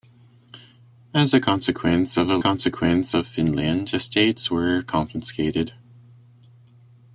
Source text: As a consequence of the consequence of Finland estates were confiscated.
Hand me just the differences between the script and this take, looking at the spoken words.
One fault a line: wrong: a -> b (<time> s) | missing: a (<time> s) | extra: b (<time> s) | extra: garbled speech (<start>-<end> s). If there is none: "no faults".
no faults